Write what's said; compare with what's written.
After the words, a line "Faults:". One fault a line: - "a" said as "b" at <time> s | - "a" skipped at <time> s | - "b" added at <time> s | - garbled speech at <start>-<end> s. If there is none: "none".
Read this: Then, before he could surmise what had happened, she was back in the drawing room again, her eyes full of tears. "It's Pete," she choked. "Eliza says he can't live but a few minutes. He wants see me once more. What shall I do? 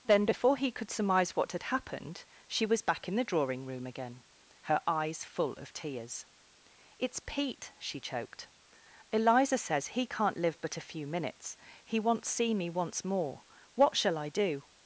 Then, before he could surmise what had happened, she was back in the drawing room again, her eyes full of tears. "It's Pete," she choked. "Eliza says he can't live but a few minutes. He wants see me once more. What shall I do?
Faults:
none